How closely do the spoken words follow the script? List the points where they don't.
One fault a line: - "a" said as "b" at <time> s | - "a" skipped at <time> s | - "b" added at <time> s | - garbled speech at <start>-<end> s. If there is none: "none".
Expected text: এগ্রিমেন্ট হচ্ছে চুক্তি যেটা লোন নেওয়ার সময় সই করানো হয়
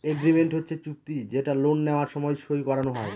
none